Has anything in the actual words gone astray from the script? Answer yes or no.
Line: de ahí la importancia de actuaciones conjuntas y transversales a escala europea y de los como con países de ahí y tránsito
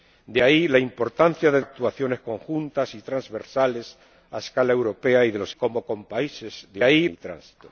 no